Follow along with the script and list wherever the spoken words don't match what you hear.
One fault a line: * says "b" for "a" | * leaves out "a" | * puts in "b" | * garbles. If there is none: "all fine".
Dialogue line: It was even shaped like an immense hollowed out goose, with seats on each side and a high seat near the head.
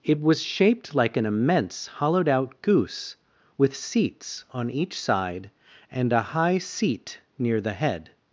* leaves out "even"